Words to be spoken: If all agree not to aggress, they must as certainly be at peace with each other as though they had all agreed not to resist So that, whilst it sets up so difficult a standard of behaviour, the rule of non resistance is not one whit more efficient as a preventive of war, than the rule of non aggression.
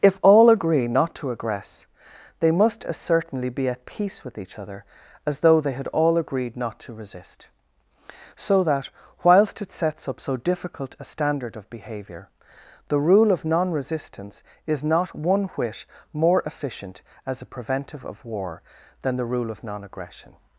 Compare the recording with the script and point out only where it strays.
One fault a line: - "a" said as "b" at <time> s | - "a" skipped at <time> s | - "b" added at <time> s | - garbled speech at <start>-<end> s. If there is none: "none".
none